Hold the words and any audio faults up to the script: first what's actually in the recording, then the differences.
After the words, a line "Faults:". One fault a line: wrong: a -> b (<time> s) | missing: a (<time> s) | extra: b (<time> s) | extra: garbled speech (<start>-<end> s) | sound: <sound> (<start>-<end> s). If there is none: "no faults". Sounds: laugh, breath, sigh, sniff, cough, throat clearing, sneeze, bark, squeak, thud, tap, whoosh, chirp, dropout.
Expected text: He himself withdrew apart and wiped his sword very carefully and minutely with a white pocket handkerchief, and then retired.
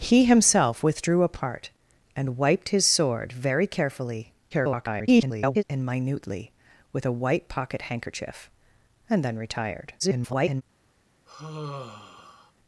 He himself withdrew apart and wiped his sword very carefully [garbled] and minutely with a white pocket handkerchief, and then retired. [garbled]
Faults:
extra: garbled speech (4.5-5.6 s)
extra: garbled speech (10.0-10.6 s)
sound: sigh (11.3-12.5 s)